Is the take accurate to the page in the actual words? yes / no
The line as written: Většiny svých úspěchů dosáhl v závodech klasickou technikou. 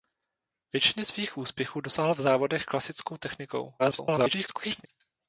no